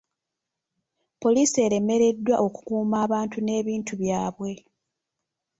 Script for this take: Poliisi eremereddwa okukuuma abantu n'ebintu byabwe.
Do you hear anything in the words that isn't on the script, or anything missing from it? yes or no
no